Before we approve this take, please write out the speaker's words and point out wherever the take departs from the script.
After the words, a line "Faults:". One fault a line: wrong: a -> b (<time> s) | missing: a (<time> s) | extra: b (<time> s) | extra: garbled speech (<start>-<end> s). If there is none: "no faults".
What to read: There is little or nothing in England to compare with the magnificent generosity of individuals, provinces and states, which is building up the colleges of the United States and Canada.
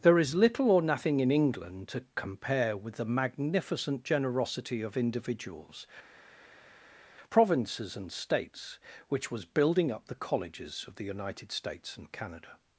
There is little or nothing in England to compare with the magnificent generosity of individuals, provinces and states, which was building up the colleges of the United States and Canada.
Faults:
wrong: is -> was (9.3 s)